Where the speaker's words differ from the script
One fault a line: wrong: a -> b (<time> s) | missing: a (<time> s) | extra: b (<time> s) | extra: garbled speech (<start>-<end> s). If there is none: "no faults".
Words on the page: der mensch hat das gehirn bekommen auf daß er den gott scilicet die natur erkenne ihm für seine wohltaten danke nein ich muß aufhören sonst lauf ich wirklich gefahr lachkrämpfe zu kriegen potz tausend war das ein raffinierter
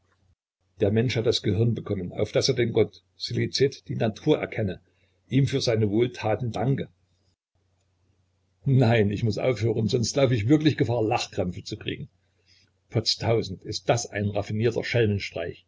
wrong: war -> ist (13.6 s)